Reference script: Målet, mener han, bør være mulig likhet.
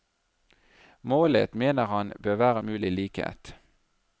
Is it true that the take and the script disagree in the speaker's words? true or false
false